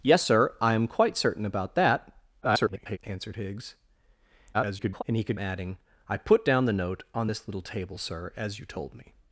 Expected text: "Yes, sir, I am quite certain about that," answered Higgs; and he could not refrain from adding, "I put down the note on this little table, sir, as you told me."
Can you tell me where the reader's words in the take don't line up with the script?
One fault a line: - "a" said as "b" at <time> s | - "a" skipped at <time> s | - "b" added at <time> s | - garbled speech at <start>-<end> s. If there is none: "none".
- garbled speech at 2.4-3.0 s
- garbled speech at 4.5-5.0 s
- "not refrain from" skipped at 5.4 s